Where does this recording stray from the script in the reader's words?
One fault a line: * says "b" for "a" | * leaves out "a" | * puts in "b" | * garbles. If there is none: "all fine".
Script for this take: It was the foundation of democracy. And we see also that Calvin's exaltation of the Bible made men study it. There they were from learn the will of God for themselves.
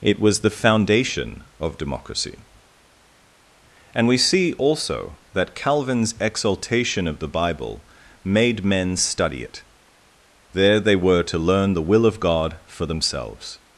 * says "to" for "from"